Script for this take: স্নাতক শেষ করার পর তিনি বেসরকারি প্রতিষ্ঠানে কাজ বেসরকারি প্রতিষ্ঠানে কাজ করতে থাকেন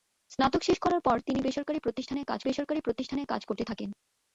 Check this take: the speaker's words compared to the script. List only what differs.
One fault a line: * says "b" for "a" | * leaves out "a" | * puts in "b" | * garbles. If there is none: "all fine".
all fine